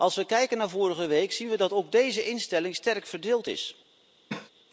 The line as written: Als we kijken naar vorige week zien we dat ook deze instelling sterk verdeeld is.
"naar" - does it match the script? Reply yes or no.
yes